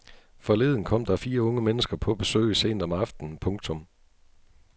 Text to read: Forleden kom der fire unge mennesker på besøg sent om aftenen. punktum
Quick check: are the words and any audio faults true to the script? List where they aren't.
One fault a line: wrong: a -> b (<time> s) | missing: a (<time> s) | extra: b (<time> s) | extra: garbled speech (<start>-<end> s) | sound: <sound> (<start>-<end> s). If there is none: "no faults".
no faults